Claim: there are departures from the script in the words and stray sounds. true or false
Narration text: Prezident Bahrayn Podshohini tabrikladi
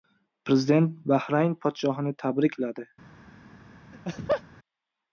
true